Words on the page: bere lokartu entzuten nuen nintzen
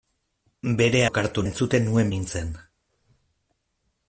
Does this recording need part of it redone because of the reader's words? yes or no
no